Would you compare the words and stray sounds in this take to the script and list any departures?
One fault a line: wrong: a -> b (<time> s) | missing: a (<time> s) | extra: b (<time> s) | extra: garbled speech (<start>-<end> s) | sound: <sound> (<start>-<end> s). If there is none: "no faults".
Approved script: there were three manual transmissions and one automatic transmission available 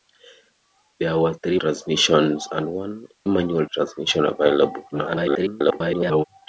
missing: manual (1.6 s)
wrong: automatic -> manual (3.3 s)
extra: garbled speech (4.9-6.2 s)